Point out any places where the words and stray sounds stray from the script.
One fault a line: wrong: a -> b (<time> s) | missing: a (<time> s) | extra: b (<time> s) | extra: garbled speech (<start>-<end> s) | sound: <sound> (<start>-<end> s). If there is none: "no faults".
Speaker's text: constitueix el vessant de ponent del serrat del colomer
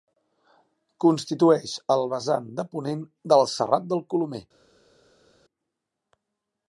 no faults